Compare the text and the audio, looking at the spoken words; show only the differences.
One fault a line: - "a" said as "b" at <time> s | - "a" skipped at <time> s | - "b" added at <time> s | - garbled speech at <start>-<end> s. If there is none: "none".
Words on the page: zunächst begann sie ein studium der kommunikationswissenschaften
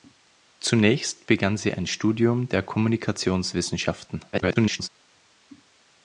- garbled speech at 4.3-4.9 s